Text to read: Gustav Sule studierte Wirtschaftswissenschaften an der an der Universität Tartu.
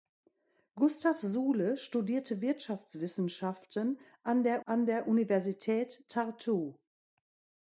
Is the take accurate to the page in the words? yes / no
yes